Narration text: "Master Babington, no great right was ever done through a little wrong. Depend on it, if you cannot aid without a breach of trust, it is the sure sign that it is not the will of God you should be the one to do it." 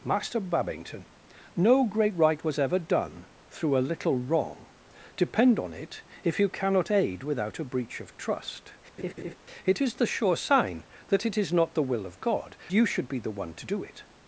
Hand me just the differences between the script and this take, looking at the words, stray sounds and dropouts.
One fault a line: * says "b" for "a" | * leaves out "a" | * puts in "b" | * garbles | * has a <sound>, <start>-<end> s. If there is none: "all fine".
* has a laugh, 9.0-9.4 s